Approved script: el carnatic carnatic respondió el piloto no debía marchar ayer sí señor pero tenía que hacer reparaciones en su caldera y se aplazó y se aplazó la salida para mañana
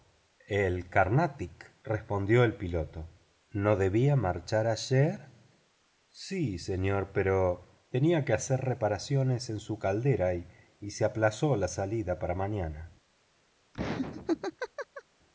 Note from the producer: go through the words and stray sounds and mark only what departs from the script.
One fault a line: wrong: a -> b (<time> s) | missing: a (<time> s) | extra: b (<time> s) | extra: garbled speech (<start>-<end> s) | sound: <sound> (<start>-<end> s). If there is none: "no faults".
missing: carnatic (1.7 s)
missing: y se aplazó (11.6 s)
sound: laugh (13.7-15.0 s)